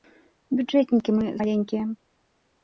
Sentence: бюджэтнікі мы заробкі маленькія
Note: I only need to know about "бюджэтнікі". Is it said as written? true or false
true